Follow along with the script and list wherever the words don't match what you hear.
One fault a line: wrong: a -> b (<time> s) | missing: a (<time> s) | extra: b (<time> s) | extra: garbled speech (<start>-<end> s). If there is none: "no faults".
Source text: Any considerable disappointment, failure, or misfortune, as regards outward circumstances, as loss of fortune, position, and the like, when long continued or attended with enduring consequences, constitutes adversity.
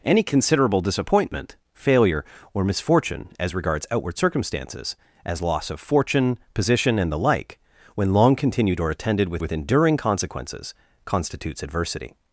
extra: with (9.4 s)